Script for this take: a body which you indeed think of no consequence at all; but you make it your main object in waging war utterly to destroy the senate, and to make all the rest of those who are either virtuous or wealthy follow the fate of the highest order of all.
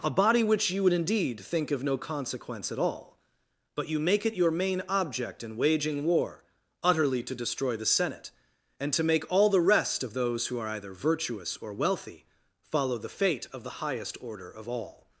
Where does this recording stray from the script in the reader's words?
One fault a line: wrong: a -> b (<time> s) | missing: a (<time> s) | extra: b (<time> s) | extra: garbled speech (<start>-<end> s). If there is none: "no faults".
extra: would (0.8 s)